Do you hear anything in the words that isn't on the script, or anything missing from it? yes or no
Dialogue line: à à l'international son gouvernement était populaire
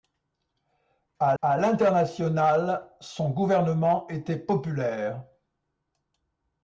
no